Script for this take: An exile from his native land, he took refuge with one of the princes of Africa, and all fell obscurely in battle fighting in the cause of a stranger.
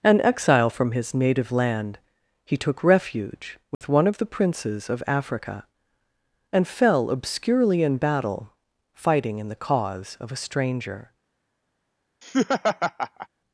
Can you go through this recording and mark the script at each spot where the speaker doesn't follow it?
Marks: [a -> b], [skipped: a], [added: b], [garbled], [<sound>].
An exile from his native land, he took refuge with [dropout] one of the princes of Africa, and [skipped: all] fell obscurely in battle fighting in the cause of a stranger. [laugh]